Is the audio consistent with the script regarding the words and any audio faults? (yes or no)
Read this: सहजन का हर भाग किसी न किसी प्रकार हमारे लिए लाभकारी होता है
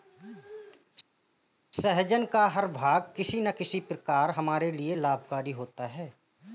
yes